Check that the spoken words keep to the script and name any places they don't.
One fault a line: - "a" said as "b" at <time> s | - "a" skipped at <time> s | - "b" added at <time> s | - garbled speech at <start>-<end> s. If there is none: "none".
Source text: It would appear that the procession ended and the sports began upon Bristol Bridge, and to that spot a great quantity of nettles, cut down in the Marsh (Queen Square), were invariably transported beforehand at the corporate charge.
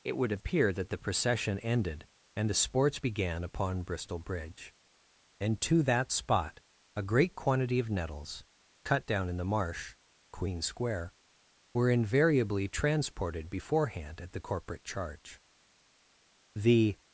- "The" added at 16.5 s